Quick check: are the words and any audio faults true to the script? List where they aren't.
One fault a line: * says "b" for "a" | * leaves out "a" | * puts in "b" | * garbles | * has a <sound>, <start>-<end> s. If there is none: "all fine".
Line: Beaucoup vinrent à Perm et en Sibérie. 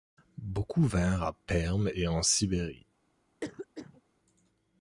* has a cough, 3.4-4.0 s